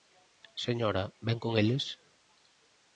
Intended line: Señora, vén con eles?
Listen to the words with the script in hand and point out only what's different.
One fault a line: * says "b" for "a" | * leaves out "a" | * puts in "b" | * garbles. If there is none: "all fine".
all fine